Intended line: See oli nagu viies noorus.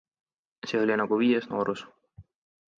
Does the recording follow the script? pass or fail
pass